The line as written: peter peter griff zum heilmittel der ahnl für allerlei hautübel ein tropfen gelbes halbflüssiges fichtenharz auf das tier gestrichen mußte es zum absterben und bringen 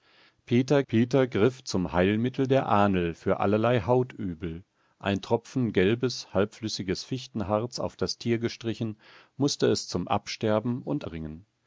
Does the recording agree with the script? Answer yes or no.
yes